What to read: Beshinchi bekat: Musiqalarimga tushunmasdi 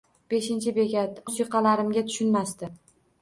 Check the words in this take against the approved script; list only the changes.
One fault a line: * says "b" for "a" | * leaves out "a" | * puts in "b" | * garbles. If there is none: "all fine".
all fine